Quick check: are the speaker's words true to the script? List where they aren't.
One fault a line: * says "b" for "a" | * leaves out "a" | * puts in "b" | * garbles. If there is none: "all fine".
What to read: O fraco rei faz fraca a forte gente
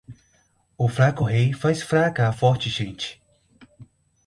all fine